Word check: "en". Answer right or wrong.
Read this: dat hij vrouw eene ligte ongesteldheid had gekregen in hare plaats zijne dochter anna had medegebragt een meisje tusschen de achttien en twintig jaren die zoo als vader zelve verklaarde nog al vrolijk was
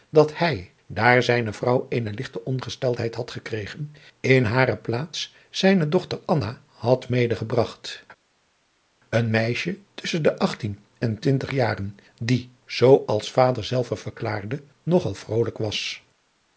right